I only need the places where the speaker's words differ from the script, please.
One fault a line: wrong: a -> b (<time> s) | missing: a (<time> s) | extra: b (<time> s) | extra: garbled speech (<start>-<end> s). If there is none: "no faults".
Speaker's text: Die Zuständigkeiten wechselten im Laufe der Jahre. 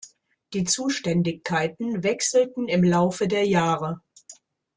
no faults